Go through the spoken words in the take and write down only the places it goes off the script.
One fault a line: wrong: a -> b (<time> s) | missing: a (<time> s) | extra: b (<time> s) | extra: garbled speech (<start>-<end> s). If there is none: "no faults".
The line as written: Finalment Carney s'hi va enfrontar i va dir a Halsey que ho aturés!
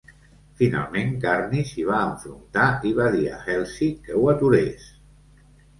no faults